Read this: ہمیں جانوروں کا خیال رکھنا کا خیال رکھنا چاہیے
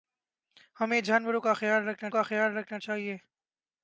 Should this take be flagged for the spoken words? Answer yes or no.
no